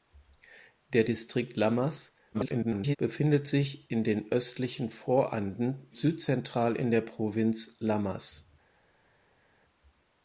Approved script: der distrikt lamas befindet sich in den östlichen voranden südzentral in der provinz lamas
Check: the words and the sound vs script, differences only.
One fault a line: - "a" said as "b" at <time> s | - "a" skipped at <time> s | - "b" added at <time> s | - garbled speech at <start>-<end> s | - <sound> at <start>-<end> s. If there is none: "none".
- garbled speech at 2.3-3.0 s